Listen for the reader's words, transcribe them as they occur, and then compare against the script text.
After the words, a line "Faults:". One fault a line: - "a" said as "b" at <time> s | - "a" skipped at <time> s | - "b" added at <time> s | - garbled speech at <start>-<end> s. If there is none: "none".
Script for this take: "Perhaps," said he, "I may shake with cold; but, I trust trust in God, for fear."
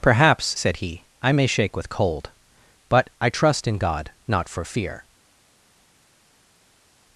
"Perhaps," said he, "I may shake with cold; but, I trust in God, not for fear."
Faults:
- "trust" skipped at 3.7 s
- "not" added at 4.3 s